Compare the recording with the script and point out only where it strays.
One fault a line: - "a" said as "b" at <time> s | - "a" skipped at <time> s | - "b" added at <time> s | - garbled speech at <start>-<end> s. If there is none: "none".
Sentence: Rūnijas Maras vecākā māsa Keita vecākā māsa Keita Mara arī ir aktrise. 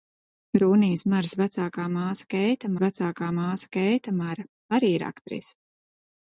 none